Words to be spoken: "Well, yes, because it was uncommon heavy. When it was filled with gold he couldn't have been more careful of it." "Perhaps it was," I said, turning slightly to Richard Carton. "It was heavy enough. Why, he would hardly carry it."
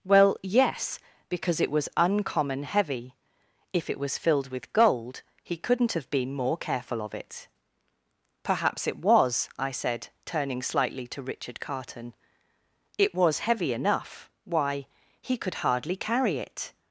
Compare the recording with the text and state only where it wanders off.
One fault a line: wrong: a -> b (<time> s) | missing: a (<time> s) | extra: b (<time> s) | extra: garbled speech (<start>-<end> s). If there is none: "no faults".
wrong: When -> If (3.7 s)
wrong: would -> could (15.4 s)